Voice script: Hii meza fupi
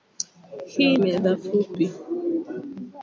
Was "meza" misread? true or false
false